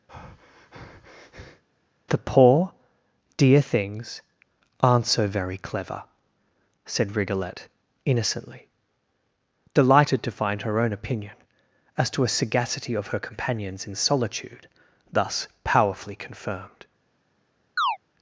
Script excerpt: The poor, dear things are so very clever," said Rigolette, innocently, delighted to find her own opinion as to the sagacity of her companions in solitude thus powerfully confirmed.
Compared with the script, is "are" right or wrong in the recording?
wrong